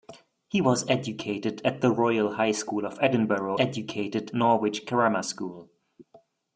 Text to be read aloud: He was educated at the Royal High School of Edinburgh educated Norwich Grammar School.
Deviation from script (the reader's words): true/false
false